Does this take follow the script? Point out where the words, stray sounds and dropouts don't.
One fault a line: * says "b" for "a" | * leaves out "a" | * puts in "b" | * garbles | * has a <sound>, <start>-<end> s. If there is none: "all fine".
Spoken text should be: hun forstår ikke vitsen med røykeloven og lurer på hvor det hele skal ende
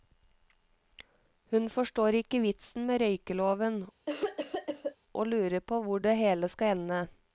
* has a cough, 4.1-5.0 s